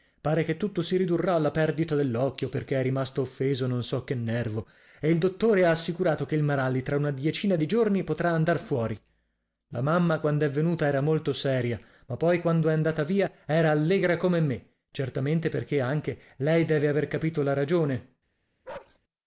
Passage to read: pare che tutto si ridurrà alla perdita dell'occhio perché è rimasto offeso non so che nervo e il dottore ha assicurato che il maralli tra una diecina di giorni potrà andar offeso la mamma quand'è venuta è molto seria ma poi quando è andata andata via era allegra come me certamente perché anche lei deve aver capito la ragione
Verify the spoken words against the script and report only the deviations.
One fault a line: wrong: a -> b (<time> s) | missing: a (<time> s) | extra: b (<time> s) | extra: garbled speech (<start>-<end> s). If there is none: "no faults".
wrong: offeso -> fuori (8.6 s)
wrong: è -> era (10.9 s)
missing: andata (13.0 s)